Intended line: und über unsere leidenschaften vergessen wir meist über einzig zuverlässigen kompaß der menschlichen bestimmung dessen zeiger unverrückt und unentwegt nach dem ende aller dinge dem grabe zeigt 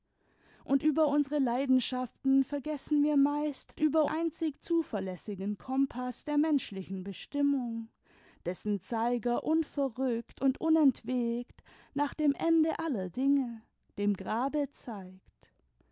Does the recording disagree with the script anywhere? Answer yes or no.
no